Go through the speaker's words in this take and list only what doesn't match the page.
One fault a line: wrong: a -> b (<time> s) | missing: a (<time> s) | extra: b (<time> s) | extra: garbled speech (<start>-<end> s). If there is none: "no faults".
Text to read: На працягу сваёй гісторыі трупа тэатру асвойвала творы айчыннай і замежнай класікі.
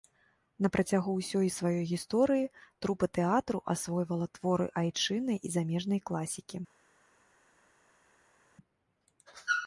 extra: ўсёй (1.2 s)